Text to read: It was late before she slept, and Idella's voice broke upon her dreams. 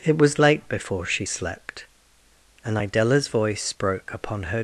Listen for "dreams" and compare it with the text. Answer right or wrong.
wrong